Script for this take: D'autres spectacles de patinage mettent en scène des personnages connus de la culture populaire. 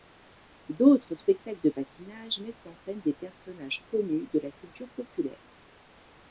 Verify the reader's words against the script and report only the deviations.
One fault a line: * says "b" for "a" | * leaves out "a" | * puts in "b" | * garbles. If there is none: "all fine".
all fine